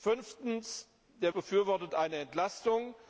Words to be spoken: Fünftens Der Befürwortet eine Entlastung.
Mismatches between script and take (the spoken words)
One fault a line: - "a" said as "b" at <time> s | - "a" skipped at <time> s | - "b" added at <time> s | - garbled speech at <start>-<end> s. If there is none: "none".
none